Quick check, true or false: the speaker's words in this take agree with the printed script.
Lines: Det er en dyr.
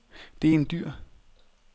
true